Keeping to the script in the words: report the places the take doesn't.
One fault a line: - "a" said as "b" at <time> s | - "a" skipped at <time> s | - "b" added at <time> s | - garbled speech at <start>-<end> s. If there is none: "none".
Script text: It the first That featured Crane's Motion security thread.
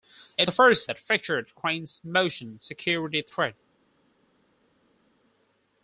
none